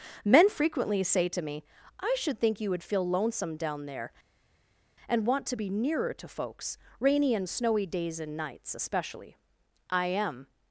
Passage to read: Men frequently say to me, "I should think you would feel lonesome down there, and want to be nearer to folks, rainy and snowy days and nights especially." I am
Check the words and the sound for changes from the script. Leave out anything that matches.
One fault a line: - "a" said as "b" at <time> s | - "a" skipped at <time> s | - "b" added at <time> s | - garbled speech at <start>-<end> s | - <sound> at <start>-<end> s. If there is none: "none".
none